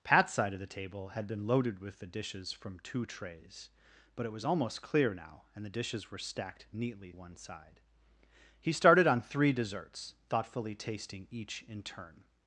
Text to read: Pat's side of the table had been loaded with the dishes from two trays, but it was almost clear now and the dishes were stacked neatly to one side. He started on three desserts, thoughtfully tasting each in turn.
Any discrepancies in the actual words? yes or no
yes